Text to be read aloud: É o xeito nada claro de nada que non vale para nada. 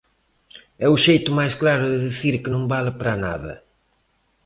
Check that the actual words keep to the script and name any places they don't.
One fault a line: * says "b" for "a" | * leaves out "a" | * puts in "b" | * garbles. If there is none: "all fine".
* says "máis" for "nada"
* says "dicir" for "nada"